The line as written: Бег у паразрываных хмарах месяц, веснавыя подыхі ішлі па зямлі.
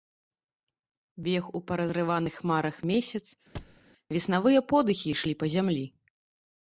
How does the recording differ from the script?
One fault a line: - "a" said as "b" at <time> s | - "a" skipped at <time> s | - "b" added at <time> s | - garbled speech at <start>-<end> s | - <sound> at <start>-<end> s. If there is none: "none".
- thud at 3.5-3.8 s